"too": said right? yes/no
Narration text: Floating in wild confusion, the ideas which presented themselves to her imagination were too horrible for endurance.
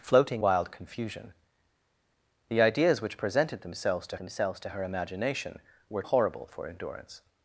no